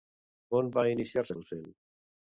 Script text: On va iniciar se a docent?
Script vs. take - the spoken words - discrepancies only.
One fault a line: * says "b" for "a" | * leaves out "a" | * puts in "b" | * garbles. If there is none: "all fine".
all fine